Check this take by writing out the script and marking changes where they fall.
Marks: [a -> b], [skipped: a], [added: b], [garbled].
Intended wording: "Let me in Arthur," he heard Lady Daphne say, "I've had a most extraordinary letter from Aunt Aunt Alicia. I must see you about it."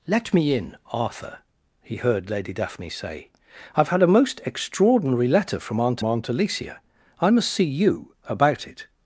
"Let me in Arthur," he heard Lady Daphne say, "I've had a most extraordinary letter from Aunt Aunt Alicia. I must see you about it."